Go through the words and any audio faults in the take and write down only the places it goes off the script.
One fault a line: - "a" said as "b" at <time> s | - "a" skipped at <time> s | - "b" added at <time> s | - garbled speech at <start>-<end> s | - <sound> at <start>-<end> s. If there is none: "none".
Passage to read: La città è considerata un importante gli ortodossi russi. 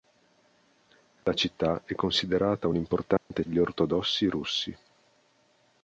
- dropout at 1.2-1.3 s
- dropout at 3.2-3.3 s